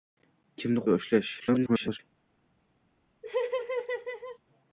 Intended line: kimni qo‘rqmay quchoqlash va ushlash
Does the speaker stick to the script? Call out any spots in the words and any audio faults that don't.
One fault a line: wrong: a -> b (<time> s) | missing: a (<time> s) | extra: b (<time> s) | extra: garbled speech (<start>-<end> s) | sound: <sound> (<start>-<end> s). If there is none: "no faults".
missing: qo‘rqmay quchoqlash (0.8 s)
extra: garbled speech (1.4-2.0 s)
sound: laugh (3.2-4.4 s)